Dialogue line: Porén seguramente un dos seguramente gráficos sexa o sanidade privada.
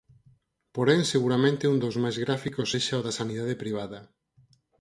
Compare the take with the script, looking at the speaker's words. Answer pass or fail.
fail